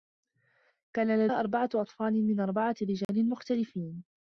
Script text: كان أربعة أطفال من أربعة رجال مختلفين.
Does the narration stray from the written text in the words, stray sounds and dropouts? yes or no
yes